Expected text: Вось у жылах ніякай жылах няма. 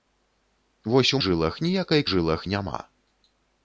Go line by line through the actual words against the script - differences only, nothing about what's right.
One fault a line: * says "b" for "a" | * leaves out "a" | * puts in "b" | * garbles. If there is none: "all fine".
all fine